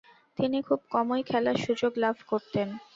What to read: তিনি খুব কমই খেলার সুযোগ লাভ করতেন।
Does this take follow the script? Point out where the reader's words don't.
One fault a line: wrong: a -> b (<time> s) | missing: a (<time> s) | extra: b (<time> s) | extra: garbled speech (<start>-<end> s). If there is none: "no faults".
no faults